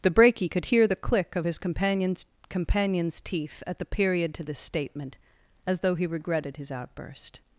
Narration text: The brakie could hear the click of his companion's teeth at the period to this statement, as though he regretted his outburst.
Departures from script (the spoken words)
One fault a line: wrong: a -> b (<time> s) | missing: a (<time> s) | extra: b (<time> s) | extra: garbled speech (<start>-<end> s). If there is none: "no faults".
extra: companion's (2.5 s)